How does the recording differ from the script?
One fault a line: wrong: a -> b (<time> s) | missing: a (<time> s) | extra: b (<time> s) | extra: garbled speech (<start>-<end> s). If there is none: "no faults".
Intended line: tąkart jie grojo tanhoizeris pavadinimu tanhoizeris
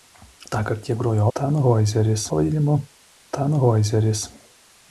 no faults